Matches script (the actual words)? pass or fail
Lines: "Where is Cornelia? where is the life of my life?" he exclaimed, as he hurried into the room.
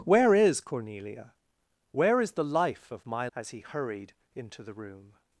fail